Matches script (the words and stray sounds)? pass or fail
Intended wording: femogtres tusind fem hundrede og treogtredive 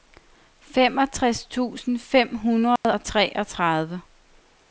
fail